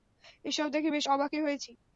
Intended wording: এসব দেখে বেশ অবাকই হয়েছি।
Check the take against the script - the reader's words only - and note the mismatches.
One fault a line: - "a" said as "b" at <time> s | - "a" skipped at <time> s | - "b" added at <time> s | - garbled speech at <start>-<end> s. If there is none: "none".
none